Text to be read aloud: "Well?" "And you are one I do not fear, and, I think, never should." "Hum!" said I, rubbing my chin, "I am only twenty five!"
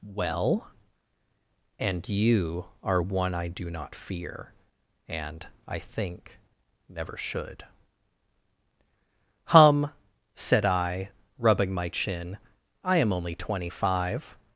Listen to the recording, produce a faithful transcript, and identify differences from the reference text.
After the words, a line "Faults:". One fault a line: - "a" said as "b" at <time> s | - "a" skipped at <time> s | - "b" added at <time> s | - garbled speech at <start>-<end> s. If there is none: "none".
"Well?" "And you are one I do not fear, and, I think, never should." "Hum!" said I, rubbing my chin, "I am only twenty five!"
Faults:
none